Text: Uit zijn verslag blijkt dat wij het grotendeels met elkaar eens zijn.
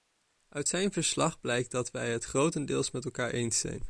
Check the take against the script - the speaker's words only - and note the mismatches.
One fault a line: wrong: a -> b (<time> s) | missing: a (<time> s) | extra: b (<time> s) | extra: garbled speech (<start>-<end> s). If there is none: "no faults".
no faults